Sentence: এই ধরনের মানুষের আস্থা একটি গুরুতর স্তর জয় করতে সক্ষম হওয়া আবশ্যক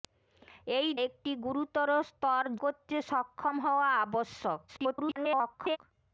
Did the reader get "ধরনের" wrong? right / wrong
wrong